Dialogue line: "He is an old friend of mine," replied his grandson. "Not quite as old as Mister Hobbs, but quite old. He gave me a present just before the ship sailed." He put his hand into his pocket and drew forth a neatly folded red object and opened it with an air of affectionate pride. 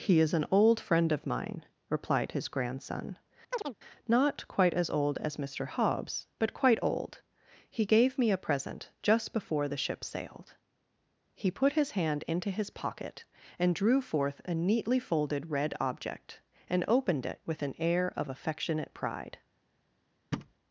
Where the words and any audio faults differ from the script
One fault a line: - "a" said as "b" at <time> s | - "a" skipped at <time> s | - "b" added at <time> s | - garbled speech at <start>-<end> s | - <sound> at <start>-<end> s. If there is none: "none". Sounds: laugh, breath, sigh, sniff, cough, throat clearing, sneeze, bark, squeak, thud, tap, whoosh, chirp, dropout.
- chirp at 3.5-3.8 s
- thud at 20.3-20.5 s